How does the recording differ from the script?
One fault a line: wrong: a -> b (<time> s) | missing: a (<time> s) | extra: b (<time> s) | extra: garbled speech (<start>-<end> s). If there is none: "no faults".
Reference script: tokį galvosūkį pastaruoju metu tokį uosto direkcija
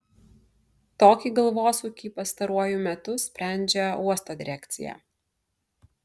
wrong: tokį -> sprendžia (3.2 s)